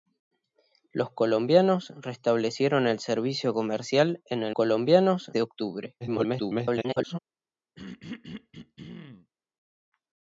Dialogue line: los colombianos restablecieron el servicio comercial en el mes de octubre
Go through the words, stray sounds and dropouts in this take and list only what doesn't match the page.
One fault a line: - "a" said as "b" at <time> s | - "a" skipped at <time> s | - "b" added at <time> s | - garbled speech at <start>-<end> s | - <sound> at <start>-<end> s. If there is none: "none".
- "mes" said as "colombianos" at 4.5 s
- garbled speech at 6.0-7.2 s
- throat clearing at 7.8-9.3 s